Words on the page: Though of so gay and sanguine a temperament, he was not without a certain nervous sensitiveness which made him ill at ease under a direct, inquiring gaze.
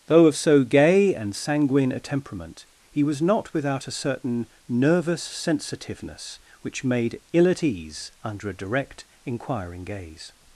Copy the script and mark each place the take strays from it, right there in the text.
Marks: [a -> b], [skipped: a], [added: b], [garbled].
Though of so gay and sanguine a temperament, he was not without a certain nervous sensitiveness which made [skipped: him] ill at ease under a direct, inquiring gaze.